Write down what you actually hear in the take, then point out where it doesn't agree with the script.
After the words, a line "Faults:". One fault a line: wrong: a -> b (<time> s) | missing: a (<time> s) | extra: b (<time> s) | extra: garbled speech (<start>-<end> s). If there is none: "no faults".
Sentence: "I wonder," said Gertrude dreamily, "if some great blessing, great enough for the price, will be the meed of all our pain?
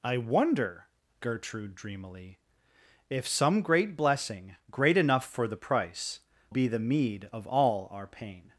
"I wonder," Gertrude dreamily, "if some great blessing, great enough for the price, be the meed of all our pain?
Faults:
missing: said (0.9 s)
missing: will (6.2 s)